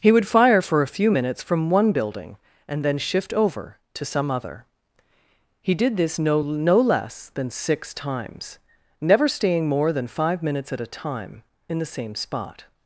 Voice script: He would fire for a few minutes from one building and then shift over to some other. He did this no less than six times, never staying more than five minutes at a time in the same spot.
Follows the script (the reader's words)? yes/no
no